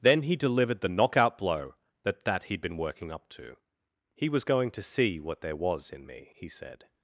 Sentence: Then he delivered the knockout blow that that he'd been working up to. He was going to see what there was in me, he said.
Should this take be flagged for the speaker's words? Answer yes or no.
no